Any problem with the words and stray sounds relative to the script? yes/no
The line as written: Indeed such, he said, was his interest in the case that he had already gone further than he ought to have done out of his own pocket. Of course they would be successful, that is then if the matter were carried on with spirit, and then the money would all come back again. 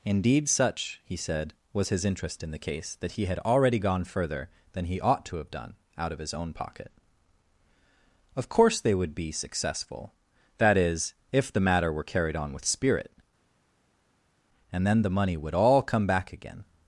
yes